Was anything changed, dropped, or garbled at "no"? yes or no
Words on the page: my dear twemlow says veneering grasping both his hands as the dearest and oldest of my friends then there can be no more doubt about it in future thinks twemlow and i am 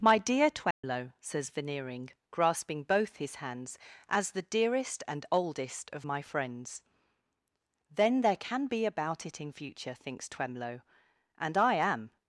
yes